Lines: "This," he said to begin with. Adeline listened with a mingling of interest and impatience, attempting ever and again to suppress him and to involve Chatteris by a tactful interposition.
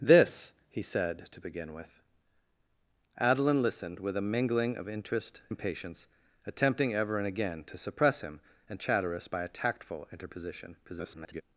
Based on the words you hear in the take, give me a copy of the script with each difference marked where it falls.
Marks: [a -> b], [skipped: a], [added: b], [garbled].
"This," he said to begin with. Adeline listened with a mingling of interest [skipped: and] impatience, attempting ever and again to suppress him and [skipped: to involve] Chatteris by a tactful interposition. [garbled]